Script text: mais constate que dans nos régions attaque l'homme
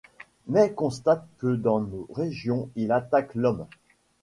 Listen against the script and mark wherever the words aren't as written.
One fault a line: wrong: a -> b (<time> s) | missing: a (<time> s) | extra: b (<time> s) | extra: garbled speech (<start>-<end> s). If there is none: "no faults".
extra: il (2.8 s)